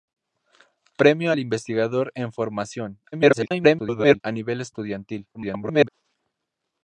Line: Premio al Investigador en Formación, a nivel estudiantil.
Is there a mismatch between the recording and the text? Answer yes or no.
yes